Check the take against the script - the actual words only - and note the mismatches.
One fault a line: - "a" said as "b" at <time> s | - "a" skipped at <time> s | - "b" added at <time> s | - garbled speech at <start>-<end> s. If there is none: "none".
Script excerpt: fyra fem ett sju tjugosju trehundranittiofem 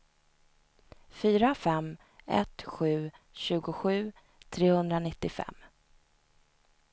none